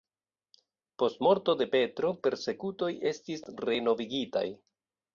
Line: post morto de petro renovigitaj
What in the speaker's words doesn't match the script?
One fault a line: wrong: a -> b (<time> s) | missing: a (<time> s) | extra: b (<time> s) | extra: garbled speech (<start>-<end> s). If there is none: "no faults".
extra: persekutoj estis (2.3 s)